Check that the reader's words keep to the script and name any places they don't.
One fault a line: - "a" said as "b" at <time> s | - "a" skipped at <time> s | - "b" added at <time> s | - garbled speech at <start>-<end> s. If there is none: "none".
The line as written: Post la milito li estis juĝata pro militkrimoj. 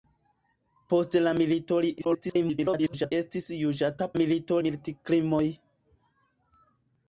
- garbled speech at 2.0-3.1 s
- "pro" said as "milito" at 4.2 s